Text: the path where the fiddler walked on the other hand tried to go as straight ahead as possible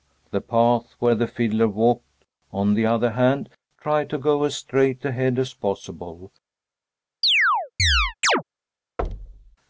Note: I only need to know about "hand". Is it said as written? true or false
true